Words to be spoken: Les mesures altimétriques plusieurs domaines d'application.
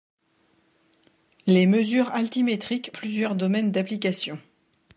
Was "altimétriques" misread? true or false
false